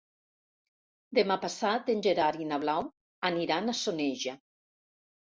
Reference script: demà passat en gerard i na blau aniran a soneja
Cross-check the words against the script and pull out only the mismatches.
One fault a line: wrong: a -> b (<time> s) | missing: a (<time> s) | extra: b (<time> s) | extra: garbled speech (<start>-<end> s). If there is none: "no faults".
no faults